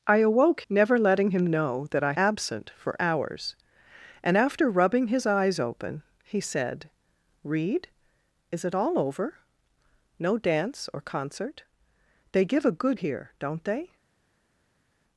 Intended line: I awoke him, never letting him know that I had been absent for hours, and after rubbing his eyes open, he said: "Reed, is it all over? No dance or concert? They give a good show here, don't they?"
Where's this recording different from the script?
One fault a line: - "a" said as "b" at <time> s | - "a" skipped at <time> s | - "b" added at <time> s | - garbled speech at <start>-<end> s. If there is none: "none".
- "him" skipped at 0.6 s
- "had been" skipped at 2.1 s
- "show" skipped at 13.0 s